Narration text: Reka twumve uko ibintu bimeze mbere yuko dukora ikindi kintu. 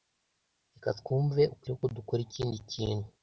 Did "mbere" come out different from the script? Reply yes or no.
yes